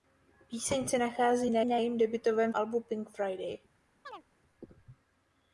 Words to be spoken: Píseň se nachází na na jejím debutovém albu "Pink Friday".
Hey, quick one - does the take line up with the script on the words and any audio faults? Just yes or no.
no